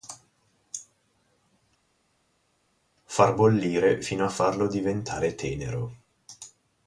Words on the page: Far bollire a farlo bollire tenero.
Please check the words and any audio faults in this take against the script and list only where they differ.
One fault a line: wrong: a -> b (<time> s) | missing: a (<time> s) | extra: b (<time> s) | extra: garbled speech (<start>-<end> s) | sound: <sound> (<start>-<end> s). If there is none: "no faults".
extra: fino (4.0 s)
wrong: bollire -> diventare (4.7 s)